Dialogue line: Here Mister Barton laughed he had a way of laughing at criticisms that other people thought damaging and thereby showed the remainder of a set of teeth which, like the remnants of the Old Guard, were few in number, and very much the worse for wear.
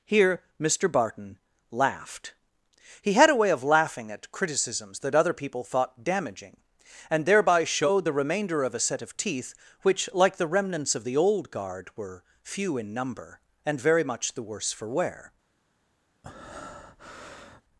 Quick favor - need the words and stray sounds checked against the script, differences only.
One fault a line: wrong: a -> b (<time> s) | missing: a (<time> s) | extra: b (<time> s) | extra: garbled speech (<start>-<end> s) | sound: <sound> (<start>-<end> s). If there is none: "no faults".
sound: breath (16.2-17.6 s)